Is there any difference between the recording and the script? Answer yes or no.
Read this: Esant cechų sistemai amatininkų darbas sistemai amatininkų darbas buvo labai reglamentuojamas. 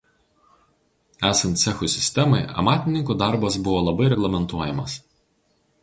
yes